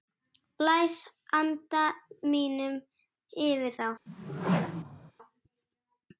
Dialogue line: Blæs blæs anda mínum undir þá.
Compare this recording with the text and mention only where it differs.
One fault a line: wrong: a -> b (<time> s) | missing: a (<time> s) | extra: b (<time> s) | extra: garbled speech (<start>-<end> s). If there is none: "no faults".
missing: blæs (0.9 s)
wrong: undir -> yfir (3.5 s)